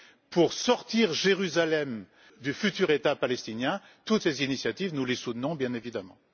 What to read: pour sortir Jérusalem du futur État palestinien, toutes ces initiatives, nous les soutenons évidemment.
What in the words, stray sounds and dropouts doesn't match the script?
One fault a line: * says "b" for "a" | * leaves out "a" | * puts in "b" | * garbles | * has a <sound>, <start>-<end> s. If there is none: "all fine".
* puts in "bien"